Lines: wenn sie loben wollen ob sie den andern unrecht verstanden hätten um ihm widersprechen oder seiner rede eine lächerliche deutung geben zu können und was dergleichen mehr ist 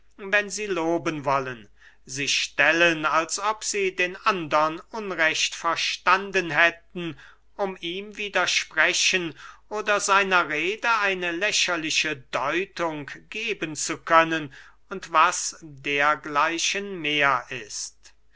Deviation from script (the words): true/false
true